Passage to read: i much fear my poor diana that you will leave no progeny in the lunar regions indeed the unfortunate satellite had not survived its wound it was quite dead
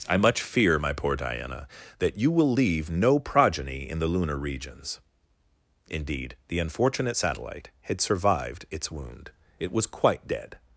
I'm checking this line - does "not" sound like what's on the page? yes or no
no